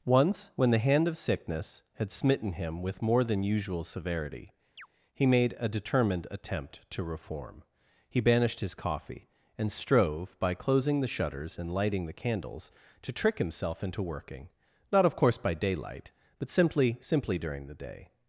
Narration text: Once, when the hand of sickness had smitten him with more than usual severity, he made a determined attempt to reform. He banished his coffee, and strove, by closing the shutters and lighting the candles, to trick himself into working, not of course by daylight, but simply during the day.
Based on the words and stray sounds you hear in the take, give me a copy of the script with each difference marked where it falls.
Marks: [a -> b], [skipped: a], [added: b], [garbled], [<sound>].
Once, when the hand of sickness had smitten him with more than usual severity, [chirp] he made a determined attempt to reform. He banished his coffee, and strove, by closing the shutters and lighting the candles, to trick himself into working, not of course by daylight, but simply [added: simply] during the day.